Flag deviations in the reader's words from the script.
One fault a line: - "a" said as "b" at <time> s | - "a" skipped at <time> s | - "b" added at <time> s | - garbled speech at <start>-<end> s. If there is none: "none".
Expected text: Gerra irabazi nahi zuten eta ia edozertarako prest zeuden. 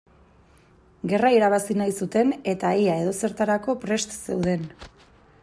none